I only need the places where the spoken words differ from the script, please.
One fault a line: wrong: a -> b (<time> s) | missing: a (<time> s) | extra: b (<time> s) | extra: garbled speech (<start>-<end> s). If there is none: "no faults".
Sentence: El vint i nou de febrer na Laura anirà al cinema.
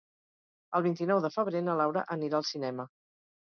no faults